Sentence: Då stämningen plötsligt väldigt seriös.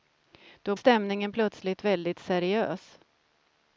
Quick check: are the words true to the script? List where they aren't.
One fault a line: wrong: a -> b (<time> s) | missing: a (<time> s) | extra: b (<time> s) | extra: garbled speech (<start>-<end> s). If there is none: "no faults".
no faults